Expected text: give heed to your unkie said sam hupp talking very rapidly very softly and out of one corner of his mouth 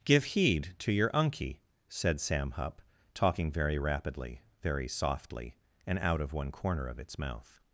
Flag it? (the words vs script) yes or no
yes